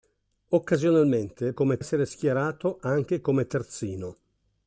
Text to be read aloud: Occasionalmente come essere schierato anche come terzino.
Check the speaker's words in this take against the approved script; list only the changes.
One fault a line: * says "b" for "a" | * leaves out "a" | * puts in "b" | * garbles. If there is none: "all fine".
all fine